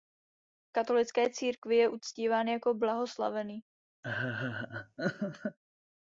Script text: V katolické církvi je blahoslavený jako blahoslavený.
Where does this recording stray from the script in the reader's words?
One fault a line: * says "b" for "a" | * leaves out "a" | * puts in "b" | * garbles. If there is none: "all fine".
* says "uctíván" for "blahoslavený"